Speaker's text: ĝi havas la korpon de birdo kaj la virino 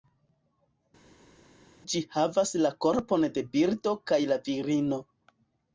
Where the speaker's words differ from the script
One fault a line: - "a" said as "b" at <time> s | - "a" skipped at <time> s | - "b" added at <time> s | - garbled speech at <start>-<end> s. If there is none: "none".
none